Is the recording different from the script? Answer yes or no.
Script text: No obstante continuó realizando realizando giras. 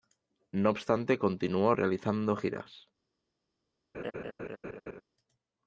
yes